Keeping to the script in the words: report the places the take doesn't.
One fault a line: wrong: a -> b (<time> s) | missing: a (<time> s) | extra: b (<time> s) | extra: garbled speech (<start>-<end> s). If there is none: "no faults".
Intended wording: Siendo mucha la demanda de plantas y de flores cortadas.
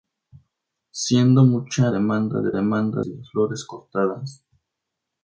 missing: la (1.9 s)
wrong: plantas -> demanda (2.5 s)